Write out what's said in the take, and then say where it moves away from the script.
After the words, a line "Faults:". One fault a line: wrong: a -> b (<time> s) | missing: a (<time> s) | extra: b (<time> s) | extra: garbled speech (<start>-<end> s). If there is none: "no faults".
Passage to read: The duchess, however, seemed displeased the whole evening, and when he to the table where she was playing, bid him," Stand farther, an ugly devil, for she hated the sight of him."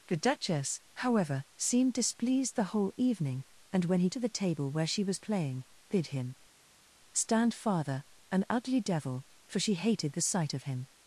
The duchess, however, seemed displeased the whole evening, and when he to the table where she was playing, bid him," Stand farther, an ugly devil, for she hated the sight of him."
Faults:
no faults